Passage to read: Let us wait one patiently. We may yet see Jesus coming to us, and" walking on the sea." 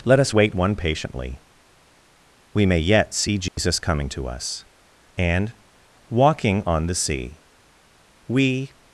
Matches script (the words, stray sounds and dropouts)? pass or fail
fail